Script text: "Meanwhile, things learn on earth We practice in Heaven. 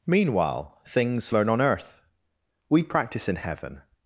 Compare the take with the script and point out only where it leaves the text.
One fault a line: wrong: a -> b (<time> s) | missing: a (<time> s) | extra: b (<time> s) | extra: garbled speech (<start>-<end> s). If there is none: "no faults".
no faults